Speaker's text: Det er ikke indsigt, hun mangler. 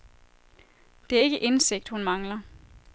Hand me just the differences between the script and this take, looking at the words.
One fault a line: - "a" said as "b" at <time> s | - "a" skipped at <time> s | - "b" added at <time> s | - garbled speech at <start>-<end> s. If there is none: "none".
none